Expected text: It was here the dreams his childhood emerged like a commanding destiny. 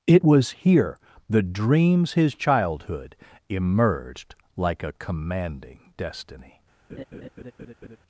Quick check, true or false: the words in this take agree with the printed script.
true